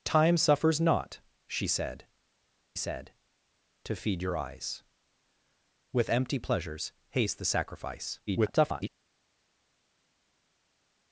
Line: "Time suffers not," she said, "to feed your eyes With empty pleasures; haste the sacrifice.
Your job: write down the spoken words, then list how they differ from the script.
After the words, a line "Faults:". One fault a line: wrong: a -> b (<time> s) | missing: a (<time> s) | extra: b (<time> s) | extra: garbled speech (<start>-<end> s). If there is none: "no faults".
"Time suffers not," she said said, "to feed your eyes With empty pleasures; haste the sacrifice. [garbled]
Faults:
extra: said (2.8 s)
extra: garbled speech (8.3-8.9 s)